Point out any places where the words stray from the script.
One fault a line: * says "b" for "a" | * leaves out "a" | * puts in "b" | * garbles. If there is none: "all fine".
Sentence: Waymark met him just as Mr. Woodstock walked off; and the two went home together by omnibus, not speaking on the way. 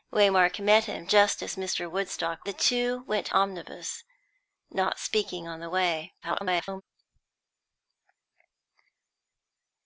* leaves out "walked off and"
* leaves out "home together by"
* garbles